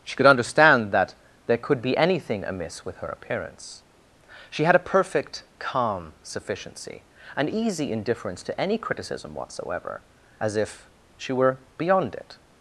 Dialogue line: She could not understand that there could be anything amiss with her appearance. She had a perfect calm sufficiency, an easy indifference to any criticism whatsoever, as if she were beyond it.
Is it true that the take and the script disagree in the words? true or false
true